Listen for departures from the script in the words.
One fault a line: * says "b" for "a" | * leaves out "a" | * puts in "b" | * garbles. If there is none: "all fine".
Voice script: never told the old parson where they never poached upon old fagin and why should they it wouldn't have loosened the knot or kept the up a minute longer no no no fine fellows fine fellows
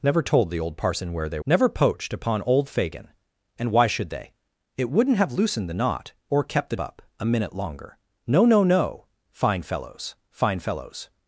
all fine